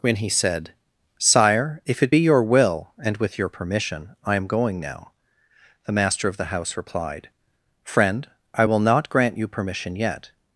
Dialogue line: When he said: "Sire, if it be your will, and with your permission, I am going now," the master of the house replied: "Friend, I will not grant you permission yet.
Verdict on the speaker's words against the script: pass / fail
pass